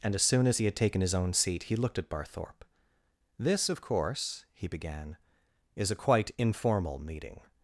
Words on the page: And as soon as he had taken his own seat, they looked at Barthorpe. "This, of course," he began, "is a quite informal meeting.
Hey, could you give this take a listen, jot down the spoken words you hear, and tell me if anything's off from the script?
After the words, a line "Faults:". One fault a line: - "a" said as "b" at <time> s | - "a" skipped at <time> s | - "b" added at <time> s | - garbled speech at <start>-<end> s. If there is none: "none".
And as soon as he had taken his own seat, he looked at Barthorpe. "This, of course," he began, "is a quite informal meeting.
Faults:
- "they" said as "he" at 1.6 s